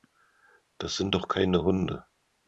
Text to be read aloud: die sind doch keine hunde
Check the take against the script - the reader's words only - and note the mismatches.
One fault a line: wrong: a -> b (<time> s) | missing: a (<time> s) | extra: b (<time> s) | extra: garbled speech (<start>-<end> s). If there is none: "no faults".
wrong: die -> das (0.8 s)